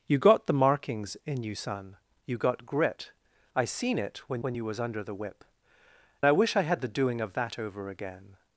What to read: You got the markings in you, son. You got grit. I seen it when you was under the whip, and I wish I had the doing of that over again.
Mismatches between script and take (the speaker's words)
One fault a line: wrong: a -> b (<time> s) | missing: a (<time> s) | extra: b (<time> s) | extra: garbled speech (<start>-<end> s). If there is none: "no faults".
extra: when (4.4 s)
missing: and (5.4 s)